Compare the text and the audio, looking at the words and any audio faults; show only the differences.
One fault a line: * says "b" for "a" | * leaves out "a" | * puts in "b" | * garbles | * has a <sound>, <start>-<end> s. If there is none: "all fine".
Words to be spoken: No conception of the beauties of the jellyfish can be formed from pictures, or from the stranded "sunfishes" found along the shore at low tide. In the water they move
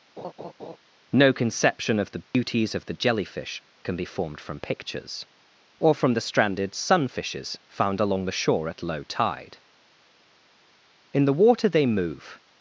* has a laugh, 0.2-0.8 s
* has a dropout, 2.3-2.3 s